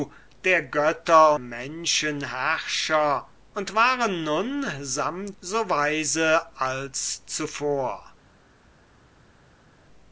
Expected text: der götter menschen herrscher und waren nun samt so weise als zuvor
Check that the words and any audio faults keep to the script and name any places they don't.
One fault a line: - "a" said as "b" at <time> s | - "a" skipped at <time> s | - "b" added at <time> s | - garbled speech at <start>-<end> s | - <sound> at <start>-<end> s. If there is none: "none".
none